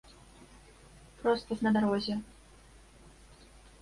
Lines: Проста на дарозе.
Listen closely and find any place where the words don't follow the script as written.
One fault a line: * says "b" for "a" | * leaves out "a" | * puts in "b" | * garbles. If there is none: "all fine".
all fine